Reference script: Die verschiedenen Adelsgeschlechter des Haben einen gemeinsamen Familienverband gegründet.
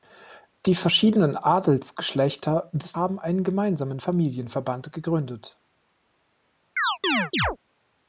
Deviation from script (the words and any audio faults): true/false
true